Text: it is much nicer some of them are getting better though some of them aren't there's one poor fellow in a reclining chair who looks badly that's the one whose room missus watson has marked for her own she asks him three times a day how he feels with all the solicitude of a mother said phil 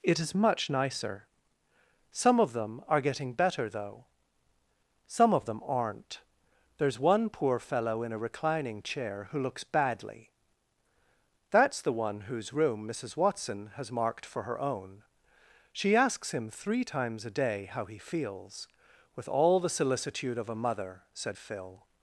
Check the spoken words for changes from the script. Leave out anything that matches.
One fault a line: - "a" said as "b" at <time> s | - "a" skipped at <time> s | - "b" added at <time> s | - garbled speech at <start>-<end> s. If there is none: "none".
none